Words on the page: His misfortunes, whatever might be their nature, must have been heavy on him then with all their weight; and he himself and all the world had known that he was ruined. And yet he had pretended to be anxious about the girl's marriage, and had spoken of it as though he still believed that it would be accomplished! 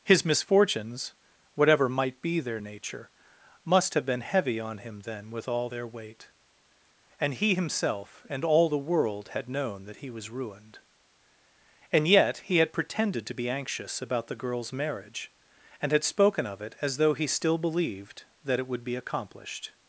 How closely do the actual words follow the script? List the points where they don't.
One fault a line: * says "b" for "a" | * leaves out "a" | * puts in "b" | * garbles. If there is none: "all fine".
all fine